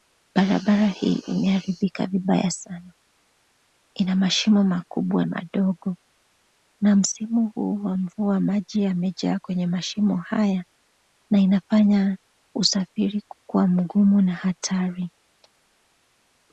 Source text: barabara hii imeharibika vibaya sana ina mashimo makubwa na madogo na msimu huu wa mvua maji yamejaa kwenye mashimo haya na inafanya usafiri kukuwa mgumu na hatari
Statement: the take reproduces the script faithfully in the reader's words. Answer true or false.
false